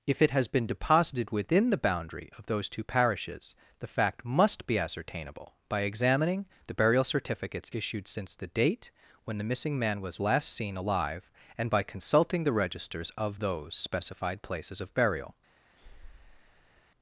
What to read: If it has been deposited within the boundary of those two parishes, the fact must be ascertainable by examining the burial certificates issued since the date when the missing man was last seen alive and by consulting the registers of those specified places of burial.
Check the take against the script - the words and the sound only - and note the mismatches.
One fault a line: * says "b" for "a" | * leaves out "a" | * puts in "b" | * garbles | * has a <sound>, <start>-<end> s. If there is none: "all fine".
* has a breath, 15.8-16.9 s